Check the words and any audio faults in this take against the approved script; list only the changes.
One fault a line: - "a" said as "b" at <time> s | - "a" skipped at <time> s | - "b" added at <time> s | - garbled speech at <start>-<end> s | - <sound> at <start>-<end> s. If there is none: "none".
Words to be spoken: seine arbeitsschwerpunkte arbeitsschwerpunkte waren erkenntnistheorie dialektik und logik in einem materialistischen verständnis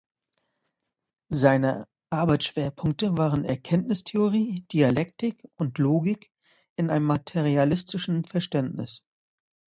- "arbeitsschwerpunkte" skipped at 3.2 s